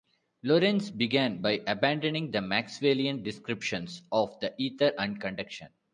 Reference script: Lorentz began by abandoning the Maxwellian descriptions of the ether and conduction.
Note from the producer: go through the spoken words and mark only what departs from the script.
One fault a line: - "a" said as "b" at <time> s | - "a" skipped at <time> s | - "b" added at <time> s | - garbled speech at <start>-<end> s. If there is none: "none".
none